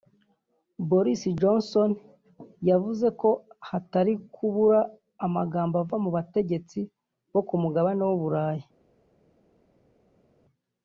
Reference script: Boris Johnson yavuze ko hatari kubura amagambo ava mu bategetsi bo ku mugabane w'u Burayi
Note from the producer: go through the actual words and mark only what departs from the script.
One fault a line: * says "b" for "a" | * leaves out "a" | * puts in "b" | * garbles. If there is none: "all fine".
all fine